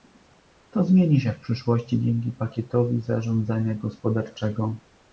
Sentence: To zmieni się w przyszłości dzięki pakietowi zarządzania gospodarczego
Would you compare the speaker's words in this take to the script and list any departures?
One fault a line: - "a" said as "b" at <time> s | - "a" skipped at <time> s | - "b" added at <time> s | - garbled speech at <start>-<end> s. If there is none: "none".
none